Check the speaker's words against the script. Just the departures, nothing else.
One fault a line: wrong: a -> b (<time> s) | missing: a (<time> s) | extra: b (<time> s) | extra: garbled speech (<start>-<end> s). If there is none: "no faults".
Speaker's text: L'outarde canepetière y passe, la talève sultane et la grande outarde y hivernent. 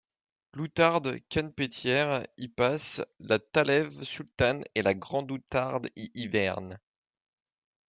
no faults